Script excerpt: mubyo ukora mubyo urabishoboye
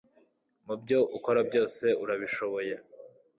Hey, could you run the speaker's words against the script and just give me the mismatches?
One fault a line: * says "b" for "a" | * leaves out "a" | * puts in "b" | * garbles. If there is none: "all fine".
* says "byose" for "mubyo"